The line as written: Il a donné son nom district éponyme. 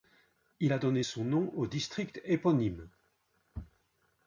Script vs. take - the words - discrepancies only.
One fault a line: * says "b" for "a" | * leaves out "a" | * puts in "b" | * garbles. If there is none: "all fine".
* puts in "au"